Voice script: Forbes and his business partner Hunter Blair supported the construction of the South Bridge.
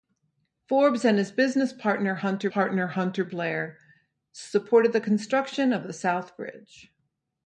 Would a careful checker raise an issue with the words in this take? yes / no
yes